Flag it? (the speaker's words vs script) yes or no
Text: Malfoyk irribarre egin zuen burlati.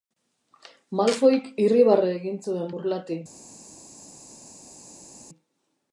no